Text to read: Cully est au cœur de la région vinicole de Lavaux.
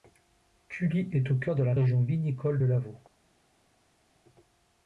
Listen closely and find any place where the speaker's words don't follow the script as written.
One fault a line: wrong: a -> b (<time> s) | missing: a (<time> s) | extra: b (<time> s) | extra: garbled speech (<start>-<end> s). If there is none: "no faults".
no faults